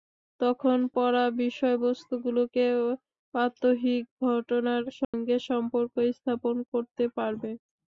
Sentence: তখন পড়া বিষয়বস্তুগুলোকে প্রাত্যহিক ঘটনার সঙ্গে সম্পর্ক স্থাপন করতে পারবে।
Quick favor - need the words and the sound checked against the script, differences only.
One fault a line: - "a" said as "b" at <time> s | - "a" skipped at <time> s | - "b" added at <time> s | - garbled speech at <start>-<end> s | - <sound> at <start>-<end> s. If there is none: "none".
- dropout at 5.0-5.1 s